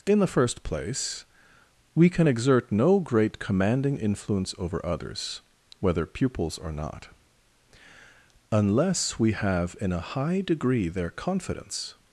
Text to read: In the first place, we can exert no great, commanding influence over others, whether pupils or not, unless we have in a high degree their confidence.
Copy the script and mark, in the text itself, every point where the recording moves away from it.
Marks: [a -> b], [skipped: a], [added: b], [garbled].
In the first place, we can exert no great, commanding influence over others, whether pupils or not, unless we have in a high degree their confidence.